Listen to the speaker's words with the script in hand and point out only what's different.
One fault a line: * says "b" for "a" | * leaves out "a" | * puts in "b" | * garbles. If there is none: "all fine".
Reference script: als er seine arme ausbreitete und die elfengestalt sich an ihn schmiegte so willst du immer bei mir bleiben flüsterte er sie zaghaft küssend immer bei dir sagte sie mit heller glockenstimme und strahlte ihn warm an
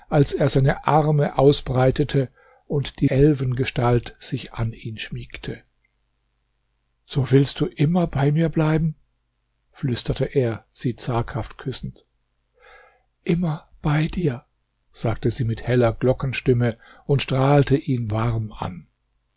all fine